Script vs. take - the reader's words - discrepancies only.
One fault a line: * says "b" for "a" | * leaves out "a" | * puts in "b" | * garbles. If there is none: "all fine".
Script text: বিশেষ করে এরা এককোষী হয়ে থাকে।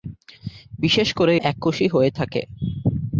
* leaves out "এরা"